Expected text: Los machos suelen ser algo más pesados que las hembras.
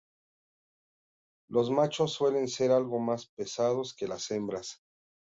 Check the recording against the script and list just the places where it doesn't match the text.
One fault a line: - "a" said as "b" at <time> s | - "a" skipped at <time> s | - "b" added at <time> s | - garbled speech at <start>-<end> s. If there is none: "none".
none